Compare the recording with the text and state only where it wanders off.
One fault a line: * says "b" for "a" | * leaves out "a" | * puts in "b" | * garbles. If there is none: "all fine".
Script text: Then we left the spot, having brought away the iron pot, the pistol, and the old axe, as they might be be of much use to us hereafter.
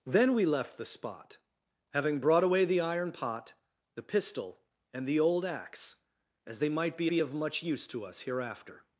all fine